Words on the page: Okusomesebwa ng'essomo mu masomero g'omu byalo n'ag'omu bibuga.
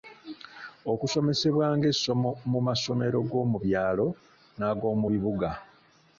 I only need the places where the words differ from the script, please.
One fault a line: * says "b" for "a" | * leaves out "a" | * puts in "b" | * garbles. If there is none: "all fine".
all fine